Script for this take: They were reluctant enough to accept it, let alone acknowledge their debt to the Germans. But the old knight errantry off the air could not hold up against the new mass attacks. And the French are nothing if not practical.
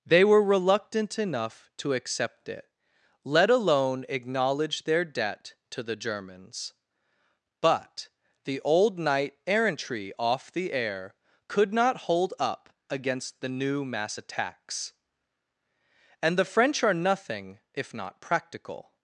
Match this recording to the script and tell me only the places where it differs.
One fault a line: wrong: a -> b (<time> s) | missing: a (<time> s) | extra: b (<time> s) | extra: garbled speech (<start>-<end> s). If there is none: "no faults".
no faults